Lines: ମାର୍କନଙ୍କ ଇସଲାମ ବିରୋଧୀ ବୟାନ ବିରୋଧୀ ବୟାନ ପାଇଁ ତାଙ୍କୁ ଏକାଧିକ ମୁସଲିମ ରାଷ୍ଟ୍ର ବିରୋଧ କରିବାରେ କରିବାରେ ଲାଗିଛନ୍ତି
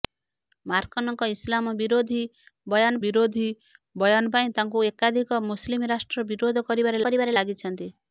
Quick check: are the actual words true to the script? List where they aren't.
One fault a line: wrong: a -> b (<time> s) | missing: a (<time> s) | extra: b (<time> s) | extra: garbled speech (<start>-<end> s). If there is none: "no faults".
no faults